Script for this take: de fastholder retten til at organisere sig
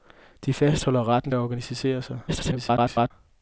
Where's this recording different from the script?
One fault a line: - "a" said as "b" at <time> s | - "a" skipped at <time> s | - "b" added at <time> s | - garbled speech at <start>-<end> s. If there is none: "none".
- "til" skipped at 1.3 s
- garbled speech at 2.3-3.1 s